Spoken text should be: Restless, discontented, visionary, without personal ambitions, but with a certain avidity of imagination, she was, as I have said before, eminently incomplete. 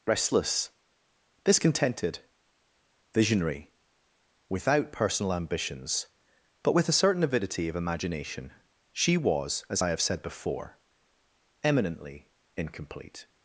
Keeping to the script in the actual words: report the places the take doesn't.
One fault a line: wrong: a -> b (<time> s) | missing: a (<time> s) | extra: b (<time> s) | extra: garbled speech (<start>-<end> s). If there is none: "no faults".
no faults